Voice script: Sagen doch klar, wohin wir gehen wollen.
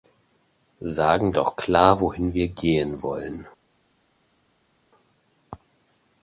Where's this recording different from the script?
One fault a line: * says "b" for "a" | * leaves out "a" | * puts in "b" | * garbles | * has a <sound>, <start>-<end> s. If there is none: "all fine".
all fine